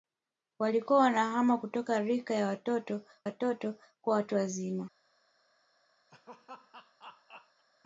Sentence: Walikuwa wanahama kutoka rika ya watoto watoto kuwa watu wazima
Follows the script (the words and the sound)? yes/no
no